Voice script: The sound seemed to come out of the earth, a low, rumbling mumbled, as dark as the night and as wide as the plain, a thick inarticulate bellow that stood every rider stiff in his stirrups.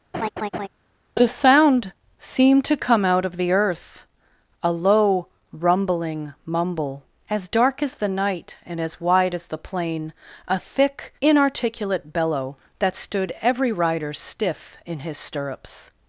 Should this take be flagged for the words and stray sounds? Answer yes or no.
yes